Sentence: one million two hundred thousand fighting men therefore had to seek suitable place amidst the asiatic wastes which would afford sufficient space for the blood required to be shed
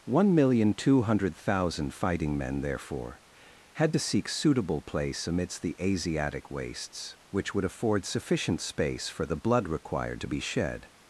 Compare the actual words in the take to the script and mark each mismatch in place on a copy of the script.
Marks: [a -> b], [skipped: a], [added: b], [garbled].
one million two hundred thousand fighting men therefore had to seek suitable place amidst the asiatic wastes which would afford sufficient space for the blood required to be shed